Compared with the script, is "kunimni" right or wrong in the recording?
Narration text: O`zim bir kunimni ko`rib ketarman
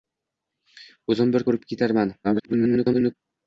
wrong